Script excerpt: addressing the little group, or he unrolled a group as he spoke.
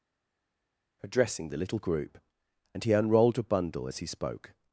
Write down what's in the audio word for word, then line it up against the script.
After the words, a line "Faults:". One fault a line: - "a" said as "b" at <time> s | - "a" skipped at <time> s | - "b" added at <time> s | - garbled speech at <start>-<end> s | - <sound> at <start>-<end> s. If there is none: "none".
addressing the little group, and he unrolled a bundle as he spoke.
Faults:
- "or" said as "and" at 2.7 s
- "group" said as "bundle" at 3.4 s